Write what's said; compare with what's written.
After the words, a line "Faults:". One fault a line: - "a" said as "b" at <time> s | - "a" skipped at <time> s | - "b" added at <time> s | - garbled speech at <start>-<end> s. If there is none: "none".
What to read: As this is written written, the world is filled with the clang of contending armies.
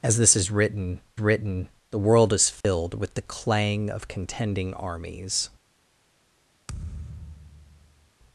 As this is written written, the world is filled with the clang of contending armies.
Faults:
none